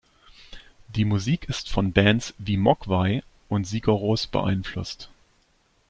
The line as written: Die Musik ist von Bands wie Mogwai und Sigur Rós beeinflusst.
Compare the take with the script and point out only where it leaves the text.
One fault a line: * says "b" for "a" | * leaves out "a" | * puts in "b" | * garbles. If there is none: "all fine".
all fine